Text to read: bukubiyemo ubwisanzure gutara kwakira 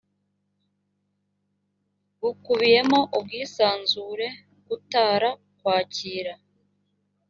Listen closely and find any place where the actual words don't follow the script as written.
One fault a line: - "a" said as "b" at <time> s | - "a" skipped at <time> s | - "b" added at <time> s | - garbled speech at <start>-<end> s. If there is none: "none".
none